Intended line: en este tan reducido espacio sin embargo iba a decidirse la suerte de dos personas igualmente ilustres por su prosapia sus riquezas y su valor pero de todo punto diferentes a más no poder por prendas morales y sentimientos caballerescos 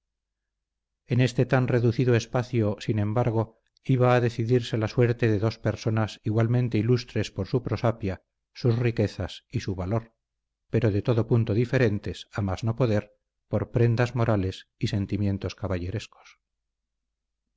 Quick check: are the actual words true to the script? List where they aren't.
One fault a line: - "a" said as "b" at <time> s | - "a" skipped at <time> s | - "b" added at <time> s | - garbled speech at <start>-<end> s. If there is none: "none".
none